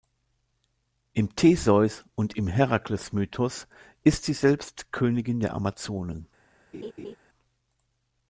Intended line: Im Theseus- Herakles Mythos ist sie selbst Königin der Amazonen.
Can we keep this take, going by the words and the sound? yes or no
no